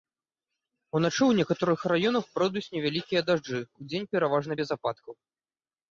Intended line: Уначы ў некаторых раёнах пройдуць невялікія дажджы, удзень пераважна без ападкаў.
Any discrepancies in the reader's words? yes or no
no